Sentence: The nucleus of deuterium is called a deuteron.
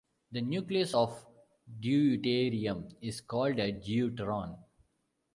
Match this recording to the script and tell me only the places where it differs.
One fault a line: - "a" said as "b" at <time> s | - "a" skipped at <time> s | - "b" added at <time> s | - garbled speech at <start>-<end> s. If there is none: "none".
none